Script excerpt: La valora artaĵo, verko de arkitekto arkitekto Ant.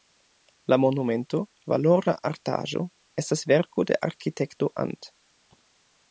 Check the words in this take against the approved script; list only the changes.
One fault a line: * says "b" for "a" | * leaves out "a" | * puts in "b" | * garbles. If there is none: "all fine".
* puts in "monumento"
* puts in "estas"
* leaves out "arkitekto"